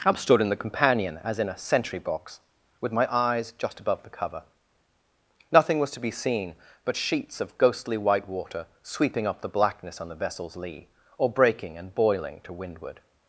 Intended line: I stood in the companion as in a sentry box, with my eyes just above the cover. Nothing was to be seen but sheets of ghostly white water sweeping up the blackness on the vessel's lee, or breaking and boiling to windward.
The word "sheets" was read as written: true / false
true